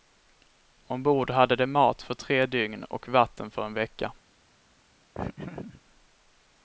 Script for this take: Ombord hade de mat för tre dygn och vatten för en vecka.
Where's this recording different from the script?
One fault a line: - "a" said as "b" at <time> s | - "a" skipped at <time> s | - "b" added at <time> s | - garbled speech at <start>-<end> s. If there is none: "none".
none